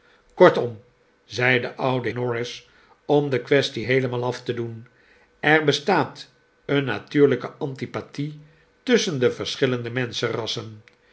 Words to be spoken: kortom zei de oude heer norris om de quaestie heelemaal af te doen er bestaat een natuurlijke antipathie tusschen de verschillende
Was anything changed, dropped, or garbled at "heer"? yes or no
yes